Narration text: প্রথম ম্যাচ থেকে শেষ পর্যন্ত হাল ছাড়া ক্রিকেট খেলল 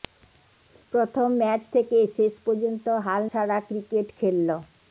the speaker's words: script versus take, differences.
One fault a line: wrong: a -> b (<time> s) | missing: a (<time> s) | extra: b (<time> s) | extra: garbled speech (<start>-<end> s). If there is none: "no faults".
no faults